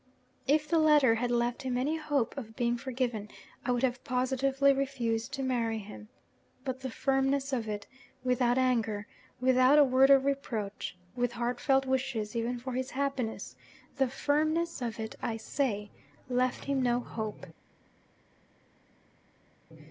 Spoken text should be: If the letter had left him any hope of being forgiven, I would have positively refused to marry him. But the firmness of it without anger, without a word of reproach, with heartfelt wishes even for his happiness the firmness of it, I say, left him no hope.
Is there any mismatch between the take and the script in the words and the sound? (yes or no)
no